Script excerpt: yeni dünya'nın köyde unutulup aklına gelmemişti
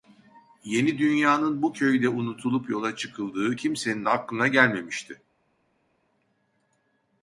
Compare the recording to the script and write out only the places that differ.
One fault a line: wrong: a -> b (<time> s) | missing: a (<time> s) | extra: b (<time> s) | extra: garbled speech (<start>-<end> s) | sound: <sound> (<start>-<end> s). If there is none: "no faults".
extra: bu (1.6 s)
extra: yola çıkıldığı kimsenin (2.7 s)